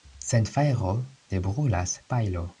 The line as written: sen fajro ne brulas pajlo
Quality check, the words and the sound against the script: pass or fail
pass